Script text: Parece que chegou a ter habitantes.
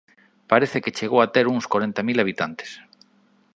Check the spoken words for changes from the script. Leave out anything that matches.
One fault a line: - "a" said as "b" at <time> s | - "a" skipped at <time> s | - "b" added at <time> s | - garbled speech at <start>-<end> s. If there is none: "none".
- "uns corenta mil" added at 1.5 s